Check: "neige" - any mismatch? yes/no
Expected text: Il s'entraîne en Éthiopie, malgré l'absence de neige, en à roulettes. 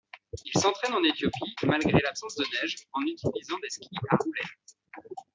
no